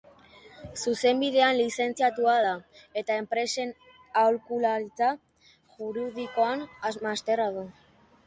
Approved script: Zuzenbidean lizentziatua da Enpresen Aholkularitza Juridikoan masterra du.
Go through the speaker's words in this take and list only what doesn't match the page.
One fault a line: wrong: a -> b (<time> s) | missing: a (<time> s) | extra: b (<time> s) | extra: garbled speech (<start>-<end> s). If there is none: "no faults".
extra: eta (3.0 s)